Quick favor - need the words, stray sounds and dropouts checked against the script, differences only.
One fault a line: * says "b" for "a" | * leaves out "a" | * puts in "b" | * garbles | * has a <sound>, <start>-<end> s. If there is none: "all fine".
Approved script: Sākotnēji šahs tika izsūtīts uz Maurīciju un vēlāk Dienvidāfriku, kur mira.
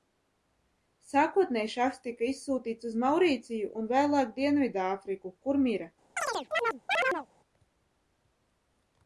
* has a chirp, 6.2-7.3 s